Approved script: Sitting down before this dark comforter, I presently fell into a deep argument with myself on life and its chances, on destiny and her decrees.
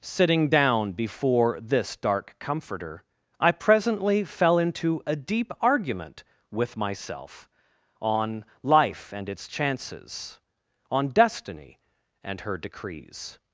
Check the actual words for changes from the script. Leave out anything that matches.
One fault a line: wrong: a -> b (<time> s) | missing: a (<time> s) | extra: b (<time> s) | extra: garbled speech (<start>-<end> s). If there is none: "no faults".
no faults